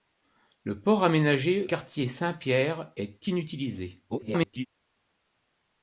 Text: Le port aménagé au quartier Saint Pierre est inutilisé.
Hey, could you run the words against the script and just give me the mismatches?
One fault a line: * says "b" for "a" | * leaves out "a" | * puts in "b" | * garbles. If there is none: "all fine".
* leaves out "au"
* garbles